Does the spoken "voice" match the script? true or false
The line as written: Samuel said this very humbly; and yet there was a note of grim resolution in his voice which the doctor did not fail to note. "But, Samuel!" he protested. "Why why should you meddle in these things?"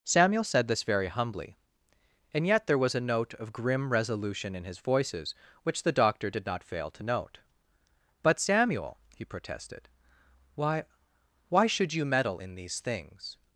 false